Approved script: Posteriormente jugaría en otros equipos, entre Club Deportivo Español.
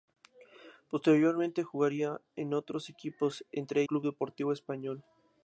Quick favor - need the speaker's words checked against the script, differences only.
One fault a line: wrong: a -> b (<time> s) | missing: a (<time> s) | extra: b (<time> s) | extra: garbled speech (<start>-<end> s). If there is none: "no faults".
no faults